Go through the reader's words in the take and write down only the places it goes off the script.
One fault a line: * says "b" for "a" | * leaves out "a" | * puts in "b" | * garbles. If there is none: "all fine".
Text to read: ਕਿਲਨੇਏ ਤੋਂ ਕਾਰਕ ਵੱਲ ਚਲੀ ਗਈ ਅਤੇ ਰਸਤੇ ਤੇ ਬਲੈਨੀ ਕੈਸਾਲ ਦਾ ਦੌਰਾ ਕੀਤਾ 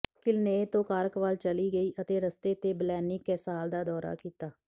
all fine